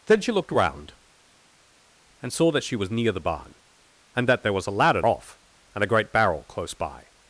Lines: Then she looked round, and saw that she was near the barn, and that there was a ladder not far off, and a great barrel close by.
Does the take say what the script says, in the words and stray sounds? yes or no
no